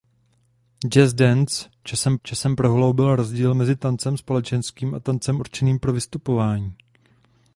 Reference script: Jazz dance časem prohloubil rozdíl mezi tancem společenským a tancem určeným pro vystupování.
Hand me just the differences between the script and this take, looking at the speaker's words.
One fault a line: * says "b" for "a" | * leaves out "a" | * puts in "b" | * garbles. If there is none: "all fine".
* puts in "časem"